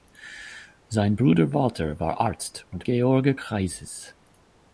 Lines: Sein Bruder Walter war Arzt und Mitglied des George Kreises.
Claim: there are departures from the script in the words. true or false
true